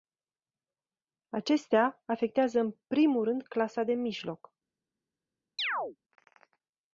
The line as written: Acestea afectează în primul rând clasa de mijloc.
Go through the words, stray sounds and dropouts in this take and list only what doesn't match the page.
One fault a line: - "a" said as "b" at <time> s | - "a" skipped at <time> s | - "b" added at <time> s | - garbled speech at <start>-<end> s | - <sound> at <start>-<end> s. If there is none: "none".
- chirp at 5.6-6.0 s